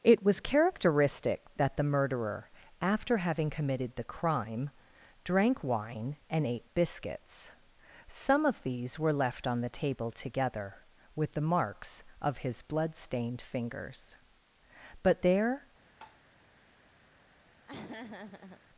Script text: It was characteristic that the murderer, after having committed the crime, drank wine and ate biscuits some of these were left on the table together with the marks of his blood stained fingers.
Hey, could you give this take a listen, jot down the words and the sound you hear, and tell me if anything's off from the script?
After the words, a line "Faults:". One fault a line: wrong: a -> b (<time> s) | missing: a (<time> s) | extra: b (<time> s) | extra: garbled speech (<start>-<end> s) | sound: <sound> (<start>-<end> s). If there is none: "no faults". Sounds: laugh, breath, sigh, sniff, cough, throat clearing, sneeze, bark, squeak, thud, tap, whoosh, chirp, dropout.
It was characteristic that the murderer, after having committed the crime, drank wine and ate biscuits some of these were left on the table together with the marks of his blood stained fingers. But there
Faults:
extra: But there (15.0 s)
sound: tap (16.0-16.2 s)
sound: laugh (17.6-18.6 s)